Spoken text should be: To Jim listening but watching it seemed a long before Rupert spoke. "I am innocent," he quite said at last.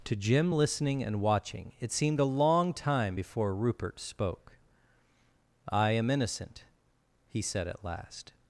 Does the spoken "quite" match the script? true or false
false